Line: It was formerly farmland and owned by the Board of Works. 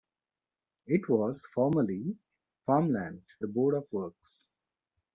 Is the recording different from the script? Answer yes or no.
yes